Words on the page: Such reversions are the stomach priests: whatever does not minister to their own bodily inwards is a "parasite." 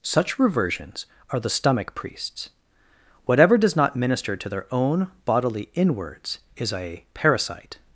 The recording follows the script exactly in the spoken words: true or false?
true